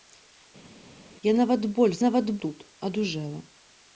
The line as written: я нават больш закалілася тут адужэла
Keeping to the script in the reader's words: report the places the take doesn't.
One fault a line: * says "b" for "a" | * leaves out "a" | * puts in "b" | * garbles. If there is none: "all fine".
* says "нават" for "закалілася"